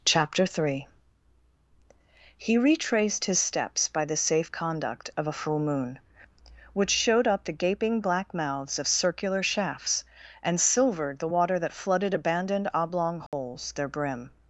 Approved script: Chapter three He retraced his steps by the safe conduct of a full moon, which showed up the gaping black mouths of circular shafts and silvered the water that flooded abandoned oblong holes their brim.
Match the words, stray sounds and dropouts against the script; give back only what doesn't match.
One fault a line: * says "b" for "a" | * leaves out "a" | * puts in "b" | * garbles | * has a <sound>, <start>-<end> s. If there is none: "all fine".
* has a dropout, 13.3-13.3 s